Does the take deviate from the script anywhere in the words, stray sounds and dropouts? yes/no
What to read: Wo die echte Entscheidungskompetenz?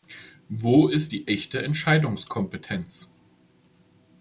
yes